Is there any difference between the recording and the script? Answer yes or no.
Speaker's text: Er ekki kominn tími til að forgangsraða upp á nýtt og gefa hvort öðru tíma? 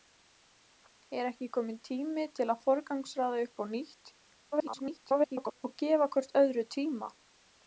yes